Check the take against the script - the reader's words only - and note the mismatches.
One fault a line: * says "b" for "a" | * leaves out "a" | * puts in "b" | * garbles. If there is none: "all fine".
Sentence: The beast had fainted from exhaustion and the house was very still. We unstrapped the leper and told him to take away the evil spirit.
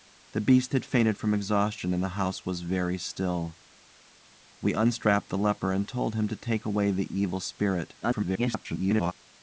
* garbles